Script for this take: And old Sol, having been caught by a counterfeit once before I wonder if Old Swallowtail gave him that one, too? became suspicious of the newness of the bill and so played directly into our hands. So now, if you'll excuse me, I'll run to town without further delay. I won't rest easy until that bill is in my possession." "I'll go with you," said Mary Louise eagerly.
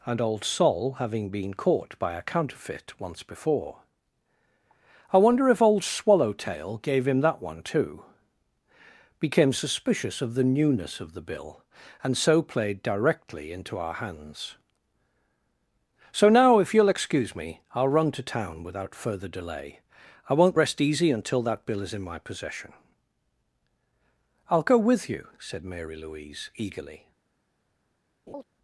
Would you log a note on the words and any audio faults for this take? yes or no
yes